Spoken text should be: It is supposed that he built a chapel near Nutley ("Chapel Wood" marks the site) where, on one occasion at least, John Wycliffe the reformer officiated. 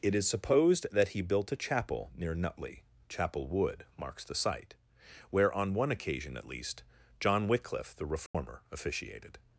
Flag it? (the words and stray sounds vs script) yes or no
yes